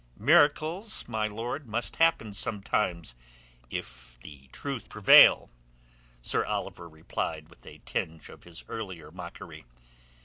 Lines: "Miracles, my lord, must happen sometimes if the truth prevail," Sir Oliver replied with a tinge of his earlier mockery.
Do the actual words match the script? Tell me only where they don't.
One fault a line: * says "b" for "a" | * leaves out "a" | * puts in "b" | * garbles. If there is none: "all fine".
all fine